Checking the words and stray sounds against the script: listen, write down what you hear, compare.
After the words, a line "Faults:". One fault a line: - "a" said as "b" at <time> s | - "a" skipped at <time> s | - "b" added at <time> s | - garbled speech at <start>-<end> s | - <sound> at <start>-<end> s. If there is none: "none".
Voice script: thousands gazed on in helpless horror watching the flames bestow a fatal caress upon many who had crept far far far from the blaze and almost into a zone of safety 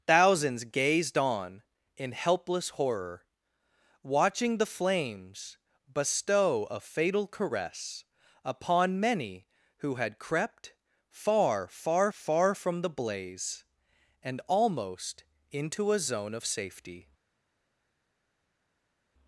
thousands gazed on in helpless horror watching the flames bestow a fatal caress upon many who had crept far far far from the blaze and almost into a zone of safety
Faults:
none